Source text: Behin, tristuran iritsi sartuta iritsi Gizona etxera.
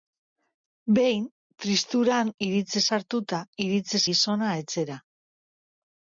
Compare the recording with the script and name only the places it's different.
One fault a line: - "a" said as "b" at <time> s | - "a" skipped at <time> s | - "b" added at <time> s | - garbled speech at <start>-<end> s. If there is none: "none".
none